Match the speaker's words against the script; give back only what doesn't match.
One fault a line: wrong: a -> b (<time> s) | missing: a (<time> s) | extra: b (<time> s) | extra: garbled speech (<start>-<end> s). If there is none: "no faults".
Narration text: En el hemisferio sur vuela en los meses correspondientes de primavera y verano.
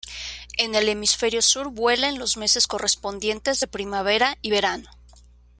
no faults